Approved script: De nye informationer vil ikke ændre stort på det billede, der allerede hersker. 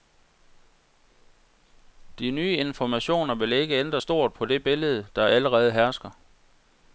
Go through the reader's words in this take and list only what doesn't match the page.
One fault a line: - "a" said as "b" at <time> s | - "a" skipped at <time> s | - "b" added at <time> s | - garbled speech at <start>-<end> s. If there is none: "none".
none